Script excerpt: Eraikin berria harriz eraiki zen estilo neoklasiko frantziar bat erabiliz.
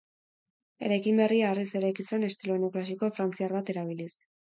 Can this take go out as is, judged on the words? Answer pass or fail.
pass